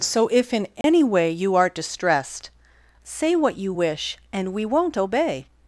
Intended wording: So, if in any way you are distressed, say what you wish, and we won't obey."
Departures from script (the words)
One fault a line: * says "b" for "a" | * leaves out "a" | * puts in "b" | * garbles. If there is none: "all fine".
all fine